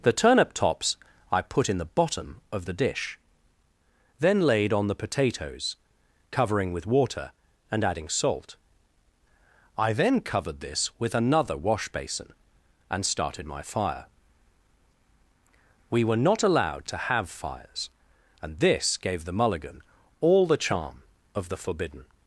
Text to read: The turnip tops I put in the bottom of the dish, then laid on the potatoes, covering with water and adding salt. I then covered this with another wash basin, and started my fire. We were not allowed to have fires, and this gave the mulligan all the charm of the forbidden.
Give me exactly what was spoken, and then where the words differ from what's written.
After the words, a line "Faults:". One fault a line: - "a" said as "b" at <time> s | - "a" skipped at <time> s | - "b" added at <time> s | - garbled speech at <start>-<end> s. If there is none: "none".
The turnip tops I put in the bottom of the dish, then laid on the potatoes, covering with water and adding salt. I then covered this with another wash basin, and started my fire. We were not allowed to have fires, and this gave the mulligan all the charm of the forbidden.
Faults:
none